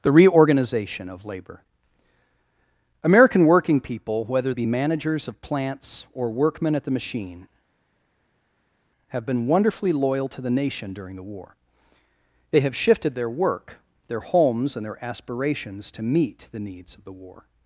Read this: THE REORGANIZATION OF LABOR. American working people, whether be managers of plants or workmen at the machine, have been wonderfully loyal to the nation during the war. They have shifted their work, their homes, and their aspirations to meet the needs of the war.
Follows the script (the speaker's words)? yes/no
yes